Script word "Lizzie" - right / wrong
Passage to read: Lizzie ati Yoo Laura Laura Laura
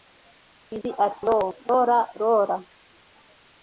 right